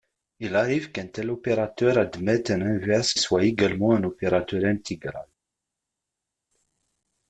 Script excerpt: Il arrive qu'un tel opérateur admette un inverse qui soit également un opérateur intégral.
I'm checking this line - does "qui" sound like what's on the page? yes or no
no